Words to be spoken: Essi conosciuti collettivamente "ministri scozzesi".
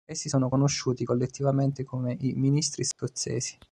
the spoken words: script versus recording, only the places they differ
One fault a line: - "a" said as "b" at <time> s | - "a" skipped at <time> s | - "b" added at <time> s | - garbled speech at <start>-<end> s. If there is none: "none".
- "sono" added at 0.3 s
- "come i" added at 1.8 s